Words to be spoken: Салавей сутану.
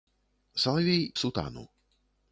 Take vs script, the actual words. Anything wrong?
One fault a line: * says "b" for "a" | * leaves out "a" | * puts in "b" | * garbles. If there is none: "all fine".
all fine